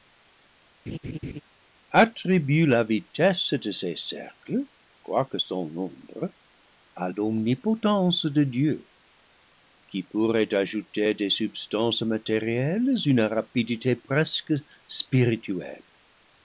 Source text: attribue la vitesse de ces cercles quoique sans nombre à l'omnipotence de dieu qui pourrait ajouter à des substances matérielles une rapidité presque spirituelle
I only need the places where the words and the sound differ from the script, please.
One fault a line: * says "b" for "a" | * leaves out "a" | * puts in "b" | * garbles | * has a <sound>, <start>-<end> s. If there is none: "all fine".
* has a laugh, 0.9-1.4 s